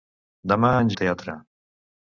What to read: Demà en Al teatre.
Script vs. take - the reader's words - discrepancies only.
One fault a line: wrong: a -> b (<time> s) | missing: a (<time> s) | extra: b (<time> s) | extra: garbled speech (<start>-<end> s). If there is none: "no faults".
no faults